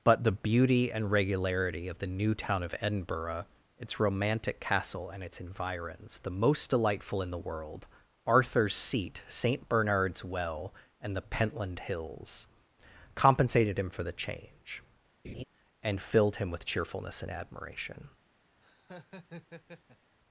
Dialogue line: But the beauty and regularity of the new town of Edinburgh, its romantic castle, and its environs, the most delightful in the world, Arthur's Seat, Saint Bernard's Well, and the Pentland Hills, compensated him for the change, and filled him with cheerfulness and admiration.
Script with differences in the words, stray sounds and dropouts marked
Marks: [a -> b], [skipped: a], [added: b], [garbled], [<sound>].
But the beauty and regularity of the new town of Edinburgh, its romantic castle, and its environs, the most delightful in the world, Arthur's Seat, Saint Bernard's Well, and the Pentland Hills, compensated him for the change, [laugh] and filled him with cheerfulness and admiration. [laugh]